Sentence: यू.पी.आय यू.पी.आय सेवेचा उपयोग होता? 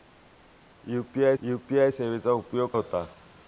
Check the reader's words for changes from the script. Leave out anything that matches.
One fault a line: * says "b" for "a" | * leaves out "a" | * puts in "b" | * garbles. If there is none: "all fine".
all fine